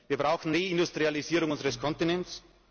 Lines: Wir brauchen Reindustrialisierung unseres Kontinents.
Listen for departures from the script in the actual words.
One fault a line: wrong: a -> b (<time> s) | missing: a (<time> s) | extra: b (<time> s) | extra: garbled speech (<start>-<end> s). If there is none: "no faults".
no faults